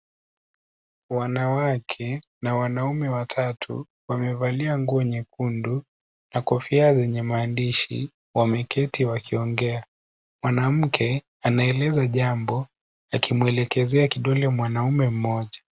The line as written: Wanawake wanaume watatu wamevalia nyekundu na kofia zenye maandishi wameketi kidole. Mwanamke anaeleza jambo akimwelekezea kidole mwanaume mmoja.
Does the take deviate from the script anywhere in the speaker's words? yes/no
yes